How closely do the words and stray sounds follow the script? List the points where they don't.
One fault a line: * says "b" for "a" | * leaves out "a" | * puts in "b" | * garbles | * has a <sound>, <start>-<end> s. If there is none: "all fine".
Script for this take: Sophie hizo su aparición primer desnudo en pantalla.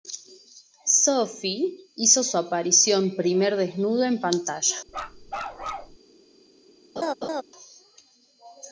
* has a bark, 4.9-6.0 s
* has a laugh, 7.0-7.4 s